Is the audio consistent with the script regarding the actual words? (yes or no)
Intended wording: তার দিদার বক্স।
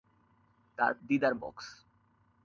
yes